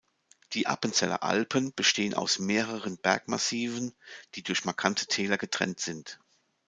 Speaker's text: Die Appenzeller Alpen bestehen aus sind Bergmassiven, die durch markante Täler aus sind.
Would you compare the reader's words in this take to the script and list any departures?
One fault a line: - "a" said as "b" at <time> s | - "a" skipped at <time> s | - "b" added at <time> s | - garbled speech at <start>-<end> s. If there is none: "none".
- "sind" said as "mehreren" at 2.4 s
- "aus" said as "getrennt" at 5.4 s